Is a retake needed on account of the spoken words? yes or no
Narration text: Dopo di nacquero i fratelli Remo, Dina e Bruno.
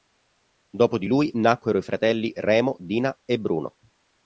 yes